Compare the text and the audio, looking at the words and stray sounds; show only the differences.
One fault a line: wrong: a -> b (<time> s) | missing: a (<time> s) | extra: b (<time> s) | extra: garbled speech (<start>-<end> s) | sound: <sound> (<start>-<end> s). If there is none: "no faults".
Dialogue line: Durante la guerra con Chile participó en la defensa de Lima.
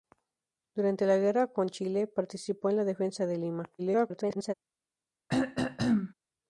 extra: garbled speech (3.8-4.5 s)
sound: throat clearing (5.3-6.1 s)